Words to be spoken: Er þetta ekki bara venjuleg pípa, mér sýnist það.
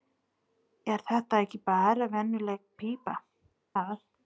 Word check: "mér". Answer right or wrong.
wrong